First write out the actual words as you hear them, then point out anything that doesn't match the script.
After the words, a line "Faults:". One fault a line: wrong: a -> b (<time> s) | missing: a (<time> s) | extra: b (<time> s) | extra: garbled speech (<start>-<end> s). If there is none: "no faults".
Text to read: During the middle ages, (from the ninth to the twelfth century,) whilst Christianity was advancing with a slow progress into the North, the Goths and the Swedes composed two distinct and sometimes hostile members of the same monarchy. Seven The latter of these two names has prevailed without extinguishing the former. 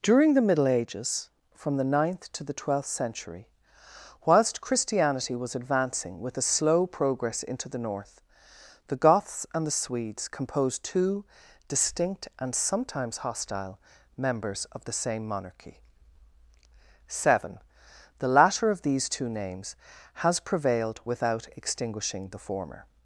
During the middle ages, (from the ninth to the twelfth century,) whilst Christianity was advancing with a slow progress into the North, the Goths and the Swedes composed two distinct and sometimes hostile members of the same monarchy. Seven The latter of these two names has prevailed without extinguishing the former.
Faults:
no faults